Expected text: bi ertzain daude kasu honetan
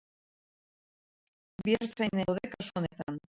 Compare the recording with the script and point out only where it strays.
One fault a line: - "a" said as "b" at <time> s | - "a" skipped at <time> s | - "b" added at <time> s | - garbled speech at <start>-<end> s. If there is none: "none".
none